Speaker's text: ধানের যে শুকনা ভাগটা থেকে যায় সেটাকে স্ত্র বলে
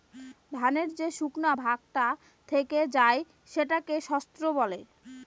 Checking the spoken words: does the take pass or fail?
pass